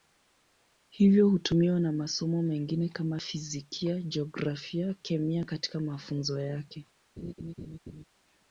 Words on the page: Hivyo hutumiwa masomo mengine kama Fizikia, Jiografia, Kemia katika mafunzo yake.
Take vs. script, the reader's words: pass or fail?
fail